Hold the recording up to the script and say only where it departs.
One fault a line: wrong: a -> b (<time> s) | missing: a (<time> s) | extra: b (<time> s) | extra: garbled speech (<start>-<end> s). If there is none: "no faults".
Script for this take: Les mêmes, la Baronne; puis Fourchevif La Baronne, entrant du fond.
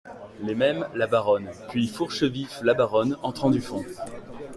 no faults